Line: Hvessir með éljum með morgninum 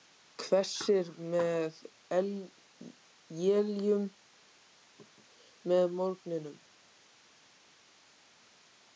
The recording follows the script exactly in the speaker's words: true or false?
true